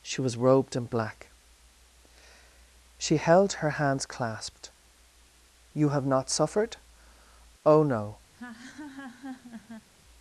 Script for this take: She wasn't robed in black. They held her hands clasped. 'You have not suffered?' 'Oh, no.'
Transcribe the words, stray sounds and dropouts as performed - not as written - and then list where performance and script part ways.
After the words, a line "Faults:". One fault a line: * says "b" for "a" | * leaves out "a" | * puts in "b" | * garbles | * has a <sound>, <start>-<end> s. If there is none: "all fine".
She was robed in black. She held her hands clasped. 'You have not suffered?' 'Oh, no.'
Faults:
* says "was" for "wasn't"
* says "She" for "They"
* has a laugh, 8.3-9.9 s